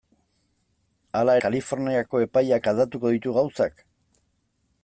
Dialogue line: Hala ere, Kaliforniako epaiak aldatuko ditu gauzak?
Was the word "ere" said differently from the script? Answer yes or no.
yes